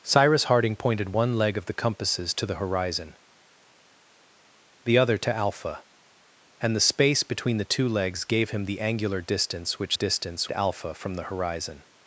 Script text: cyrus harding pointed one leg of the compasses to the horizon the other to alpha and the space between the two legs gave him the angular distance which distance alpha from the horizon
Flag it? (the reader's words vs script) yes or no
no